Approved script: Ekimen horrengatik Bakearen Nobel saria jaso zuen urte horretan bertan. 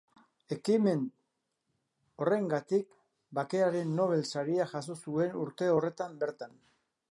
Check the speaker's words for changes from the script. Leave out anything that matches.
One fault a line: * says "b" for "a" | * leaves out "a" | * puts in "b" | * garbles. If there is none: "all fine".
all fine